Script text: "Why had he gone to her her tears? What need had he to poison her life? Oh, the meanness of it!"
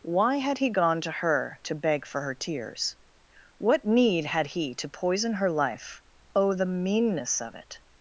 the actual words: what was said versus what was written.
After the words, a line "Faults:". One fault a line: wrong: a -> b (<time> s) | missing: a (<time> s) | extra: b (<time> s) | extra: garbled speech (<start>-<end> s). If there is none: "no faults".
"Why had he gone to her to beg for her tears? What need had he to poison her life? Oh, the meanness of it!"
Faults:
extra: to beg for (1.6 s)